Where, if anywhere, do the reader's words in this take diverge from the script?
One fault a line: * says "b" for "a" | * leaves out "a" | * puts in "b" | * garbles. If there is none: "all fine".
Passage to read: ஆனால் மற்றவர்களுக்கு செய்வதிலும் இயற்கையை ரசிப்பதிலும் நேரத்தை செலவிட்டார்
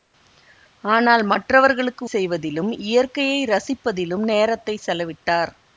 all fine